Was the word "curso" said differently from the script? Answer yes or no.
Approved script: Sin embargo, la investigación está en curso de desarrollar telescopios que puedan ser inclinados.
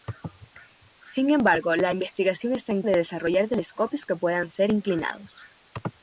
yes